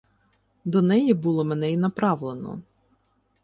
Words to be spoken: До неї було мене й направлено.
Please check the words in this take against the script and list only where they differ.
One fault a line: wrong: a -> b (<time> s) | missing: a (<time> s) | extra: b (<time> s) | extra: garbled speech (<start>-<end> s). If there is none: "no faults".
no faults